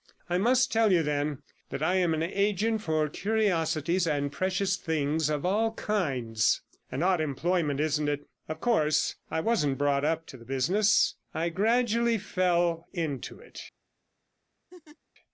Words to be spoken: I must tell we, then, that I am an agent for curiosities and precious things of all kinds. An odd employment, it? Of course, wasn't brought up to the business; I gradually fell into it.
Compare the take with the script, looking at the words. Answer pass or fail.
fail